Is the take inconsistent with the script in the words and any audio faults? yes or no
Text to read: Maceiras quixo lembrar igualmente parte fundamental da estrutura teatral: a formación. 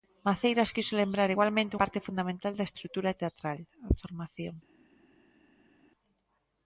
no